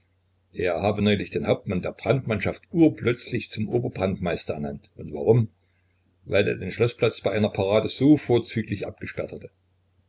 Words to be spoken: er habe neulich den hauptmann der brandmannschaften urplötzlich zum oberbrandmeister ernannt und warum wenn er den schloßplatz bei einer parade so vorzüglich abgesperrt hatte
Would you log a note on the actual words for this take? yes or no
yes